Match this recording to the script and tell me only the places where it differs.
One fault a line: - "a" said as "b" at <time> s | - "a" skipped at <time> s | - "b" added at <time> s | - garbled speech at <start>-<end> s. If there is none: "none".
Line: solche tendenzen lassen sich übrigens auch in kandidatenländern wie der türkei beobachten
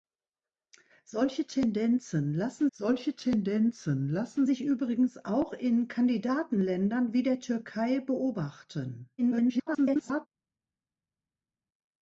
- "solche tendenzen lassen" added at 2.7 s
- garbled speech at 9.2-10.3 s